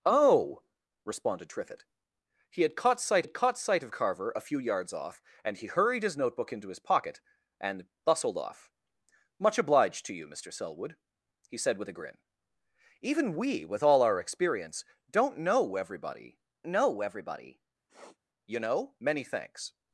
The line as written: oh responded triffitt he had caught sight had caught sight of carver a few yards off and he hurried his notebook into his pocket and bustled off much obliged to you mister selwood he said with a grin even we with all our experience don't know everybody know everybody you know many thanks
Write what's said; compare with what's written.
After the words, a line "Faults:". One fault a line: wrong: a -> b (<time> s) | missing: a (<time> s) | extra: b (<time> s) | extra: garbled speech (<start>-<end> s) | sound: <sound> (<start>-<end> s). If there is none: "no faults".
oh responded triffitt he had caught sight had caught sight of carver a few yards off and he hurried his notebook into his pocket and bustled off much obliged to you mister selwood he said with a grin even we with all our experience don't know everybody know everybody you know many thanks
Faults:
sound: sniff (17.9-18.2 s)